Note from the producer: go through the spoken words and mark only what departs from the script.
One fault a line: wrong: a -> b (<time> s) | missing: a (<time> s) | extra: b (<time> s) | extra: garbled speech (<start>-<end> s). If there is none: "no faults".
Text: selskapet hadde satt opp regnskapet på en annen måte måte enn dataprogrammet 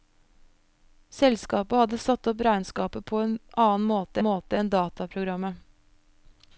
no faults